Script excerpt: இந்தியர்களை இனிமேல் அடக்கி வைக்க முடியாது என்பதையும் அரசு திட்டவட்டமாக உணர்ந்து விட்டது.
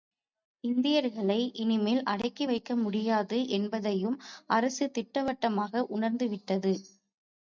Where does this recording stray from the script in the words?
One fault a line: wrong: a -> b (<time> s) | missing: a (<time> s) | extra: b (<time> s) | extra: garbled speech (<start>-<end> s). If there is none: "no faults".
no faults